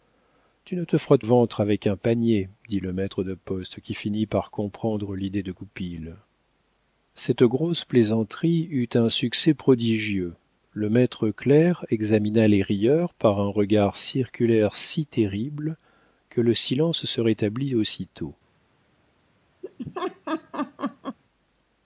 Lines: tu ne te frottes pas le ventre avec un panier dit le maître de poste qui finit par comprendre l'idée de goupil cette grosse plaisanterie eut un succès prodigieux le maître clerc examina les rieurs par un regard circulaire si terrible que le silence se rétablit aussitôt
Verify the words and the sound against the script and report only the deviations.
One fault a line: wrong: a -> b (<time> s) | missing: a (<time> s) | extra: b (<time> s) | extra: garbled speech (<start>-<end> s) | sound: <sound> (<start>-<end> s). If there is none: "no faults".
missing: pas le (1.2 s)
sound: laugh (19.6-21.2 s)